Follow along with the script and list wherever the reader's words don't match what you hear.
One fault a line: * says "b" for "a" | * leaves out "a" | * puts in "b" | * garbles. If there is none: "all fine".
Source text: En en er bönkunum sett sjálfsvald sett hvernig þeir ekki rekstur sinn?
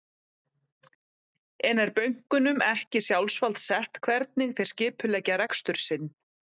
* leaves out "en"
* says "ekki" for "sett"
* says "skipuleggja" for "ekki"